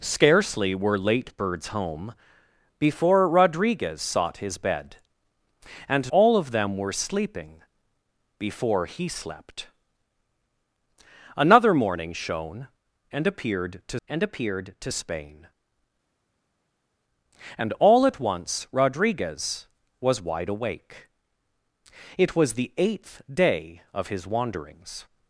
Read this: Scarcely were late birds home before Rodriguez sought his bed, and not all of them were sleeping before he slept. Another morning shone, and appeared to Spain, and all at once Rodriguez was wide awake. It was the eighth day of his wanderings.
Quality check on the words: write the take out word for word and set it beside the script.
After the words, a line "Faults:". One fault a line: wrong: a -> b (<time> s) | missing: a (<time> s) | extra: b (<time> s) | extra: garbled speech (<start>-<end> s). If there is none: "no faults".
Scarcely were late birds home before Rodriguez sought his bed, and all of them were sleeping before he slept. Another morning shone, and appeared to and appeared to Spain, and all at once Rodriguez was wide awake. It was the eighth day of his wanderings.
Faults:
missing: not (6.1 s)
extra: and appeared to (14.1 s)